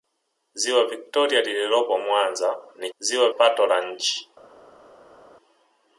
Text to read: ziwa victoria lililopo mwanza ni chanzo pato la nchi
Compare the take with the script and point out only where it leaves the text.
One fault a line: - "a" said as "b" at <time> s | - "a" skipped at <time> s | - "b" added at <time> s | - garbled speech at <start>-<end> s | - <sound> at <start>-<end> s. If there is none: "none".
- "chanzo" said as "ziwa" at 3.0 s